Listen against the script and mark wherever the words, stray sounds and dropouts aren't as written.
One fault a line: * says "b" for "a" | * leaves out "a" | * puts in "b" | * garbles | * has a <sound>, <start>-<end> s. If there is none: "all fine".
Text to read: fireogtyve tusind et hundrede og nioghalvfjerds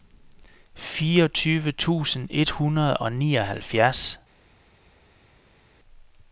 all fine